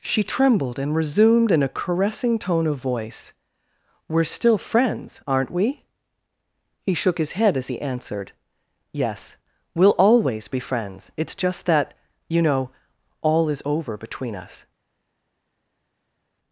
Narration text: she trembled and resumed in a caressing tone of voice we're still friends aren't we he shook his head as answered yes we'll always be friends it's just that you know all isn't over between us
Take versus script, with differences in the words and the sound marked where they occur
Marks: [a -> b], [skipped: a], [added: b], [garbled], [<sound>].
she trembled and resumed in a caressing tone of voice we're still friends aren't we he shook his head as [added: he] answered yes we'll always be friends it's just that you know all [isn't -> is] over between us